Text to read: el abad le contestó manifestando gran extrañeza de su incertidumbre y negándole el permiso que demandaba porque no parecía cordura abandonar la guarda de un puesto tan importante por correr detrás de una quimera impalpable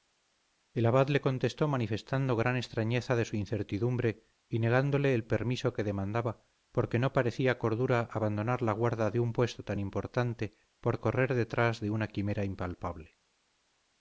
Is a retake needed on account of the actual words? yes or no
no